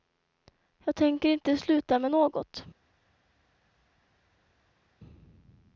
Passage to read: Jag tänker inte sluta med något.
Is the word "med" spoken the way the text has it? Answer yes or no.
yes